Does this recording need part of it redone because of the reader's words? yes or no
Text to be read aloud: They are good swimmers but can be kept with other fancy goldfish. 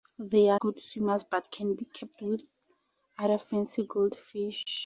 no